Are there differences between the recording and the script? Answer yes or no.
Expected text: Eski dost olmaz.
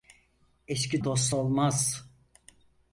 no